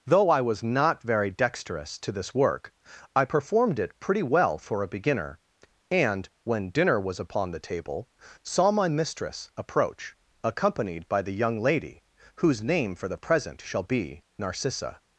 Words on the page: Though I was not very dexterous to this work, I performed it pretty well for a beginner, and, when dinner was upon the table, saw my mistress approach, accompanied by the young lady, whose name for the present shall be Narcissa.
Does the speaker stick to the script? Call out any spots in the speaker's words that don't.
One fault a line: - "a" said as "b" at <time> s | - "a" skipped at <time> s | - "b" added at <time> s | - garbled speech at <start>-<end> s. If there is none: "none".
none